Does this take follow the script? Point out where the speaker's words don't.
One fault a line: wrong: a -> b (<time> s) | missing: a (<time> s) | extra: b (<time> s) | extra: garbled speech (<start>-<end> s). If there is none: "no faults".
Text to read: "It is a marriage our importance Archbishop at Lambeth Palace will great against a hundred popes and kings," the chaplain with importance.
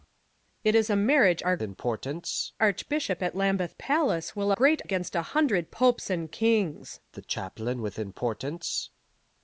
no faults